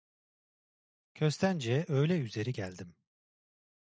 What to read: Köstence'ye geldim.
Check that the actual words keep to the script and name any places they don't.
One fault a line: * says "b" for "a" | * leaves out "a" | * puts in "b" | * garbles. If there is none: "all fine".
* puts in "öğle üzeri"